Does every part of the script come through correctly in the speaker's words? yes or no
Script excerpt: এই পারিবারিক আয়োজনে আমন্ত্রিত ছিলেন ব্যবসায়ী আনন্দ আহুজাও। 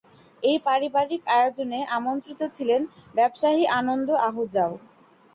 yes